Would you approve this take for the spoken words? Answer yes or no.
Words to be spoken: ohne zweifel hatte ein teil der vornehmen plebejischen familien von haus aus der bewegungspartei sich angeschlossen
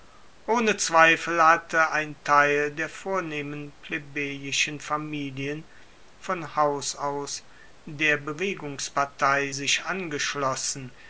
yes